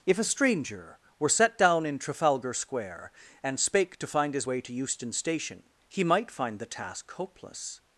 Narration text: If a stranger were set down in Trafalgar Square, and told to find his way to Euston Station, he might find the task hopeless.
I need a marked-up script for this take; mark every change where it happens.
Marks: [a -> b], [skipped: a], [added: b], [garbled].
If a stranger were set down in Trafalgar Square, and [told -> spake] to find his way to Euston Station, he might find the task hopeless.